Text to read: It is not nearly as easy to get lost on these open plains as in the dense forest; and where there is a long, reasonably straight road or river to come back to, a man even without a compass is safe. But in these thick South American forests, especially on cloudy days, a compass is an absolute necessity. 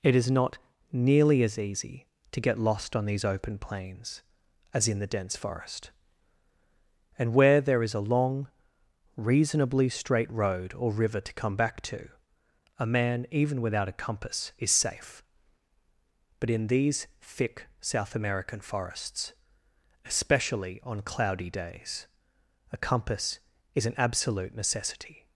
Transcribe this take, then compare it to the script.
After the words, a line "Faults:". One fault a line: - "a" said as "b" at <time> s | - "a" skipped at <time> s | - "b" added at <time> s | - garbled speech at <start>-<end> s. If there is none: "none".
It is not nearly as easy to get lost on these open plains as in the dense forest; and where there is a long, reasonably straight road or river to come back to, a man even without a compass is safe. But in these thick South American forests, especially on cloudy days, a compass is an absolute necessity.
Faults:
none